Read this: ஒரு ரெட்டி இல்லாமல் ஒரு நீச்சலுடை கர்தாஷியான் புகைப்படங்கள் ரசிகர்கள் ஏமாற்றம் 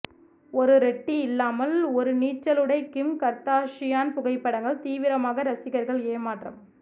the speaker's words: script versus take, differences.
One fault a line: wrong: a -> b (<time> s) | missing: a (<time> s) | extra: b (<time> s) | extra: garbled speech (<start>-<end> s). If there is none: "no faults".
extra: கிம் (2.9 s)
extra: தீவிரமாக (4.8 s)